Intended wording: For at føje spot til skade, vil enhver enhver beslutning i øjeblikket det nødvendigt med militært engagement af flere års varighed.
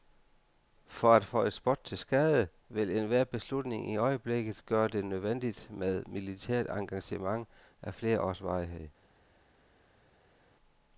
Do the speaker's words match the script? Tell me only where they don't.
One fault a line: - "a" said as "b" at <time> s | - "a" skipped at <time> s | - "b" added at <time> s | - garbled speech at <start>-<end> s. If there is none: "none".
- "enhver" skipped at 3.2 s
- "gøre" added at 4.7 s